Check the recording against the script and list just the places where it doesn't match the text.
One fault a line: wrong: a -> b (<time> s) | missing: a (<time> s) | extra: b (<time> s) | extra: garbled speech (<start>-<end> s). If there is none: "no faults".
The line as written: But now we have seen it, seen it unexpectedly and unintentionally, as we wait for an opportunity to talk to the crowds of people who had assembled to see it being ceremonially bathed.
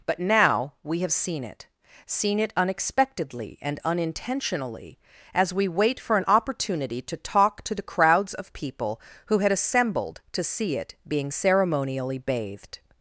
no faults